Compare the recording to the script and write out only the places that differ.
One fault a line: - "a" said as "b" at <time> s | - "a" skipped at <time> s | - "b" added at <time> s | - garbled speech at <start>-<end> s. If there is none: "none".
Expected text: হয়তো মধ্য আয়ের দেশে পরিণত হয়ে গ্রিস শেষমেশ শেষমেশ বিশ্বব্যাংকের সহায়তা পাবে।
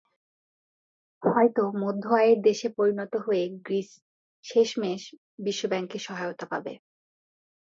- "শেষমেশ" skipped at 5.0 s